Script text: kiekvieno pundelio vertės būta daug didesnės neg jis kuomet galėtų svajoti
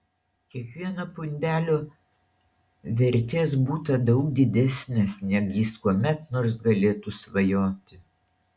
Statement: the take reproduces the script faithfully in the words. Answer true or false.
false